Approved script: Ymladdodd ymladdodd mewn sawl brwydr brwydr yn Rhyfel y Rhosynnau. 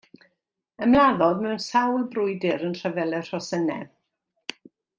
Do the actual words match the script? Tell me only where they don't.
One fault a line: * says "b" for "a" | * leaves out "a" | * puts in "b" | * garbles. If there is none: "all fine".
* leaves out "ymladdodd"
* leaves out "brwydr"